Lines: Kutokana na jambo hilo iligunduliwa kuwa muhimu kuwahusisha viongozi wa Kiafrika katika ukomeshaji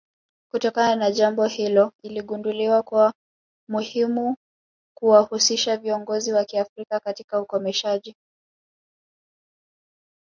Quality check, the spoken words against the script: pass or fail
pass